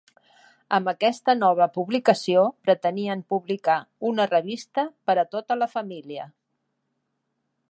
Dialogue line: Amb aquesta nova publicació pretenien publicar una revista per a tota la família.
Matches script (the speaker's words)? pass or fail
pass